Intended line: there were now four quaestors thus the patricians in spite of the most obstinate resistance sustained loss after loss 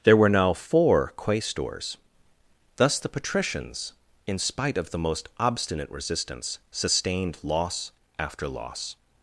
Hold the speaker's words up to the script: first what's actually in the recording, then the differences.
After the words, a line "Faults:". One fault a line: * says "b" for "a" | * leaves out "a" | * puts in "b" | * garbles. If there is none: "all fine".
there were now four quaestors thus the patricians in spite of the most obstinate resistance sustained loss after loss
Faults:
all fine